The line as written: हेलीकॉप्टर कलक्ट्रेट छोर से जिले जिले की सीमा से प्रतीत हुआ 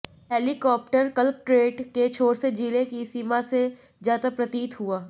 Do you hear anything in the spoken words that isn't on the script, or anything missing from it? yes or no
yes